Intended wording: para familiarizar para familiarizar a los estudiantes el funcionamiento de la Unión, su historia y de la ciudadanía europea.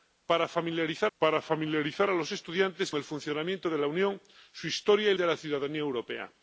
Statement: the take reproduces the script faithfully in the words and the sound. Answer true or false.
true